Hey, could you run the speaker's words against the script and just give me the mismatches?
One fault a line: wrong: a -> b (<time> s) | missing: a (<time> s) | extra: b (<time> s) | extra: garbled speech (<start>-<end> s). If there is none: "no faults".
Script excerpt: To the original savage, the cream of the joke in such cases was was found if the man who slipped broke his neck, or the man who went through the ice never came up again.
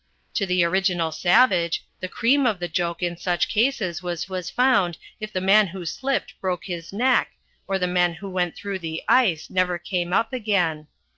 no faults